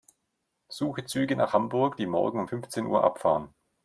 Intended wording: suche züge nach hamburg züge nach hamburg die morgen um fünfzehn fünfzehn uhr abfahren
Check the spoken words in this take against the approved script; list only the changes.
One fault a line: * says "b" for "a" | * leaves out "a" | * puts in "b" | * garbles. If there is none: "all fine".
* leaves out "züge nach hamburg"
* leaves out "fünfzehn"